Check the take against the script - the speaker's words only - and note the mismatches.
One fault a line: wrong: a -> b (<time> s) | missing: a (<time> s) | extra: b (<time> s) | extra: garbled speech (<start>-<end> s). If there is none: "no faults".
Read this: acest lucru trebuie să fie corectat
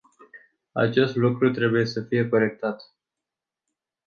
no faults